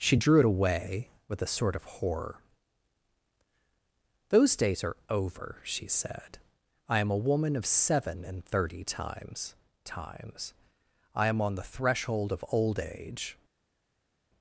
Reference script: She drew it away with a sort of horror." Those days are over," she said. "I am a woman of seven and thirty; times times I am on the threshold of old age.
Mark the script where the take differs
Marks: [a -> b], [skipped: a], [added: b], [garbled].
She drew it away with a sort of horror." Those days are over," she said. "I am a woman of seven and thirty; times times I am on the threshold of old age.